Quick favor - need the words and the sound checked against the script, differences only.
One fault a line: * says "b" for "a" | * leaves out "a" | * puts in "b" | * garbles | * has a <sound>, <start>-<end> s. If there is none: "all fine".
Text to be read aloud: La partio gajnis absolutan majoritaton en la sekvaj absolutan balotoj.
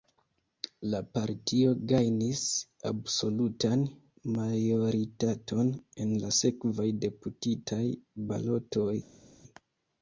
* says "deputitaj" for "absolutan"